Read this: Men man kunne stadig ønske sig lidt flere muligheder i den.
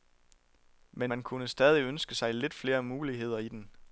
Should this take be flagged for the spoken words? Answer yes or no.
no